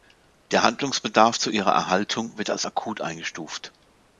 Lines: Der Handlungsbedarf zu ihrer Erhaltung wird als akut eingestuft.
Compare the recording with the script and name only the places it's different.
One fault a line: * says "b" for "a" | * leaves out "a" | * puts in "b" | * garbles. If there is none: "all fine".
all fine